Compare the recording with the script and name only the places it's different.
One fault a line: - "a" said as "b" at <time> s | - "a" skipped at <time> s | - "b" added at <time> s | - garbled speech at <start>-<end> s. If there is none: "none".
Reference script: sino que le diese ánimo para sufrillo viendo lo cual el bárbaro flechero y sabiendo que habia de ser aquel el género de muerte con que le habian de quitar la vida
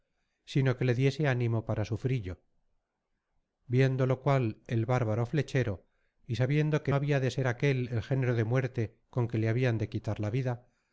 none